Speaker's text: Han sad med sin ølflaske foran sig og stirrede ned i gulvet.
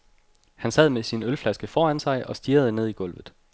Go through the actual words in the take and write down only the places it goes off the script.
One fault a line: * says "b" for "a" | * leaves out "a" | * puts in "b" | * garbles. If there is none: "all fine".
all fine